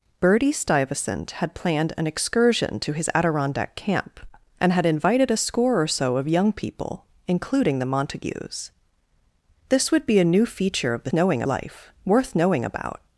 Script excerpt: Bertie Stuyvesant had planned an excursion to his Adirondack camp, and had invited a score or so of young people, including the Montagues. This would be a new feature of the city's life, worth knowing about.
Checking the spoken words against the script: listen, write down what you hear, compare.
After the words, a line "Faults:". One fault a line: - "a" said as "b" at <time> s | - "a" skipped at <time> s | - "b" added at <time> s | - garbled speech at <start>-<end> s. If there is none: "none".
Bertie Stuyvesant had planned an excursion to his Adirondack camp, and had invited a score or so of young people, including the Montagues. This would be a new feature of the knowing life, worth knowing about.
Faults:
- "city's" said as "knowing" at 11.1 s